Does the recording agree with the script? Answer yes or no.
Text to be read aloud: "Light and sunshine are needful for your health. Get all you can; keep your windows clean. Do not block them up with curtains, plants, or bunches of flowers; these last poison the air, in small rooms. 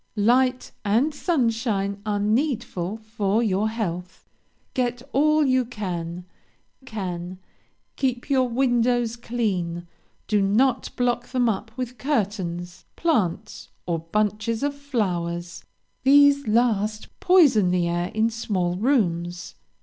no